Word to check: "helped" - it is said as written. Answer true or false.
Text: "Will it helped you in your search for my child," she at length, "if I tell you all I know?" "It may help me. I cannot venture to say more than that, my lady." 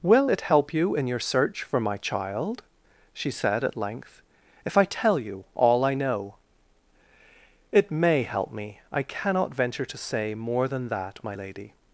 false